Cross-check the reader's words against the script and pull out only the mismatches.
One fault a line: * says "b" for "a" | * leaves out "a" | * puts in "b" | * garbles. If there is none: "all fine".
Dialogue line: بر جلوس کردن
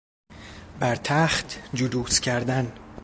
* puts in "تخت"